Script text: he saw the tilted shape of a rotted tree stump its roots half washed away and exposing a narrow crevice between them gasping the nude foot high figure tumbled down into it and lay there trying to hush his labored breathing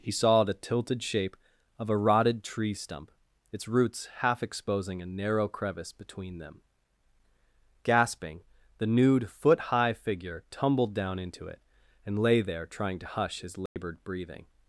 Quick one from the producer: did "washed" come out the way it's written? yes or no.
no